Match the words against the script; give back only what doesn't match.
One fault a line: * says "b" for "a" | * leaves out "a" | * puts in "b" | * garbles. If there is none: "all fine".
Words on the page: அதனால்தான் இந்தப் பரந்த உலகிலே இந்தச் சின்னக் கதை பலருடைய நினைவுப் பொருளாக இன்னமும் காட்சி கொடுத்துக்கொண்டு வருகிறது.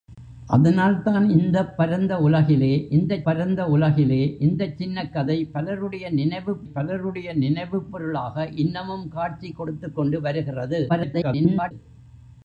* puts in "பரந்த உலகிலே இந்தச்"
* puts in "பலருடைய நினைவுப்"
* garbles